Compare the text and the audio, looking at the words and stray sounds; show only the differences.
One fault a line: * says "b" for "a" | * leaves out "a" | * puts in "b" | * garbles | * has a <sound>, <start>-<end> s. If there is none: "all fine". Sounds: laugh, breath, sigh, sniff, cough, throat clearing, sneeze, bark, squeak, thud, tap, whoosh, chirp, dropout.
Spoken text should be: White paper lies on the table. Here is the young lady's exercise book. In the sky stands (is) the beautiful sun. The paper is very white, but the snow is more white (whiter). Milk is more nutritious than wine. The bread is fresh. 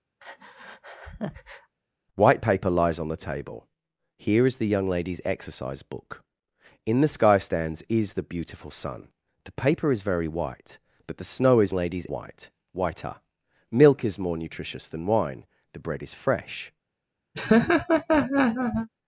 * has a breath, 0.2-1.7 s
* says "lady's" for "more"
* has a laugh, 17.3-18.9 s